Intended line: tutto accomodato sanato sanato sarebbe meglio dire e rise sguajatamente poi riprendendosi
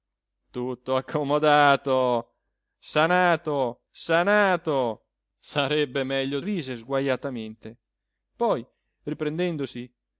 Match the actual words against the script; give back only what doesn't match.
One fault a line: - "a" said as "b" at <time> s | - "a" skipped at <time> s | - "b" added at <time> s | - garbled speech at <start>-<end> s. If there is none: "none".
- "dire e" skipped at 6.4 s